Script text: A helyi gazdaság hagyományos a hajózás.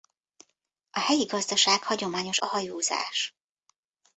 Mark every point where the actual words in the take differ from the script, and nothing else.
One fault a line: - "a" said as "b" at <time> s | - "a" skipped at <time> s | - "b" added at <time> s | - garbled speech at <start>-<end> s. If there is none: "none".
none